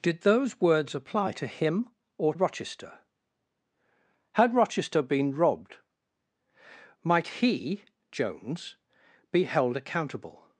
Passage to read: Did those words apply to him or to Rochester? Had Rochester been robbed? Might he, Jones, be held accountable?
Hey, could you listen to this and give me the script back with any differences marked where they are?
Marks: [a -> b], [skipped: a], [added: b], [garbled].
Did those words apply to him or [skipped: to] Rochester? Had Rochester been robbed? Might he, Jones, be held accountable?